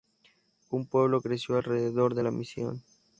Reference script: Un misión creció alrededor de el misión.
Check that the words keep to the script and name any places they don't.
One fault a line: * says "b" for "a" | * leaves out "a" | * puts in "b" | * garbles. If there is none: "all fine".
* says "pueblo" for "misión"
* says "la" for "el"